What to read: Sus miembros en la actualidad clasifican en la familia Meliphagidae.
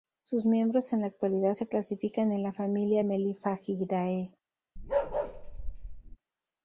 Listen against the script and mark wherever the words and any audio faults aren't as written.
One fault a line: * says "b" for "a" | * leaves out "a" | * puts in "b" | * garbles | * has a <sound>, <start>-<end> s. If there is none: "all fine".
* puts in "se"
* has a bark, 4.8-6.2 s